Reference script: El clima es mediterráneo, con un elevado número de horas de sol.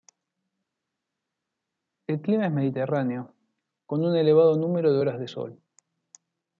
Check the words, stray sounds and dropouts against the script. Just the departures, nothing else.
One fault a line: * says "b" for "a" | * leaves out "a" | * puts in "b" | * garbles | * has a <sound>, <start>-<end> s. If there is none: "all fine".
all fine